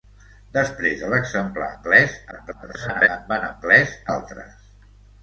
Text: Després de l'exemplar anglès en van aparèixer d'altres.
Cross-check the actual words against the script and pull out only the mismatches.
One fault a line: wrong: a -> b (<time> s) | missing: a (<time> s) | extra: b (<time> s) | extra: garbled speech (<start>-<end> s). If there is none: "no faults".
extra: garbled speech (2.3-3.1 s)
wrong: aparèixer -> anglès (3.5 s)